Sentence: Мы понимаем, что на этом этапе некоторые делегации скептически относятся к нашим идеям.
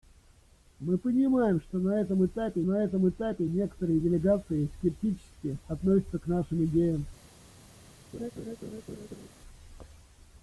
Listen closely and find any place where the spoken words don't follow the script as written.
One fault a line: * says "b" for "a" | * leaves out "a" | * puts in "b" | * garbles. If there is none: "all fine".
* puts in "на этом этапе"